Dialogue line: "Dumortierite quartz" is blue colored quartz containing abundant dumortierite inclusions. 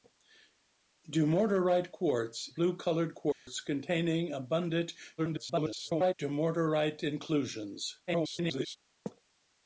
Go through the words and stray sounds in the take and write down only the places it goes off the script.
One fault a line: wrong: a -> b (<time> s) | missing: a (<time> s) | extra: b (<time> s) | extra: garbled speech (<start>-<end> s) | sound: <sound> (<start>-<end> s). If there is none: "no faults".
missing: is (2.5 s)
sound: dropout (3.3-3.5 s)
extra: garbled speech (5.2-6.1 s)
extra: garbled speech (8.1-8.8 s)